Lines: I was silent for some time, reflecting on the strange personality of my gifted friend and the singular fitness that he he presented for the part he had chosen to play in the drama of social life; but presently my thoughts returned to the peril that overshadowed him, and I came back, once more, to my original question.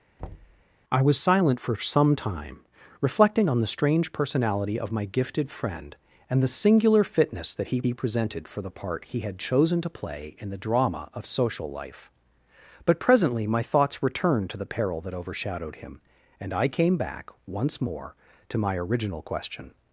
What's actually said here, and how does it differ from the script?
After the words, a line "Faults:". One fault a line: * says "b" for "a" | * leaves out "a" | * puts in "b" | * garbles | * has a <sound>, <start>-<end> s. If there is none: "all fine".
I was silent for some time, reflecting on the strange personality of my gifted friend and the singular fitness that he he presented for the part he had chosen to play in the drama of social life; but presently my thoughts returned to the peril that overshadowed him, and I came back, once more, to my original question.
Faults:
* has a thud, 0.2-0.6 s